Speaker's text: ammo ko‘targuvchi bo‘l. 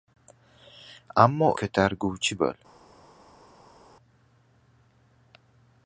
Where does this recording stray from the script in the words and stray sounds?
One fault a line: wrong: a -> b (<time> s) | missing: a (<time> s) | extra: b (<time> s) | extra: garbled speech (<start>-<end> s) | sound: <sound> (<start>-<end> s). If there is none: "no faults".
no faults